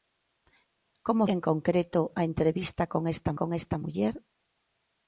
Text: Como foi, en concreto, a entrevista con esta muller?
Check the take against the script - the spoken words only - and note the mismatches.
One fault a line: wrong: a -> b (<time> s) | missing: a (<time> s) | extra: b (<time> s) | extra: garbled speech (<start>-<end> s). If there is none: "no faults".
missing: foi (1.2 s)
extra: con esta (3.4 s)